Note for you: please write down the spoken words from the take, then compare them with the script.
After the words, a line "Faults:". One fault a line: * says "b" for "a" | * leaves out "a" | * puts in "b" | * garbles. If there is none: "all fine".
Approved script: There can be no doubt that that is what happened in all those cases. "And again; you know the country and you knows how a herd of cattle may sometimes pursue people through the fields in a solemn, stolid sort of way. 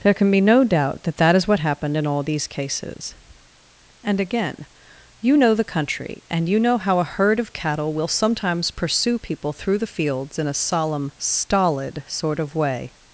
There can be no doubt that that is what happened in all these cases. "And again; you know the country and you know how a herd of cattle will sometimes pursue people through the fields in a solemn, stolid sort of way.
Faults:
* says "these" for "those"
* says "know" for "knows"
* says "will" for "may"